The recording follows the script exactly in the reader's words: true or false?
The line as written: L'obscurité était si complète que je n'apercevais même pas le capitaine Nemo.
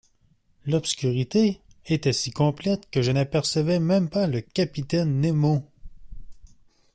true